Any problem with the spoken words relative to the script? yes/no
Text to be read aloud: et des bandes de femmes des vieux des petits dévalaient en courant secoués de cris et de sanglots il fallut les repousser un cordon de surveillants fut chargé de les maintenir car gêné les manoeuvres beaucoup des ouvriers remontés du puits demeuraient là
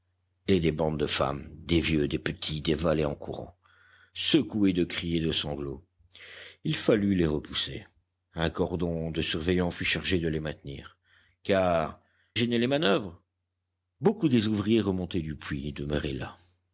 no